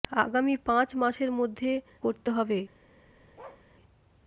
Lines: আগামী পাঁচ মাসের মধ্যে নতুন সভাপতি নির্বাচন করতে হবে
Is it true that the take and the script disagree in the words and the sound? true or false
true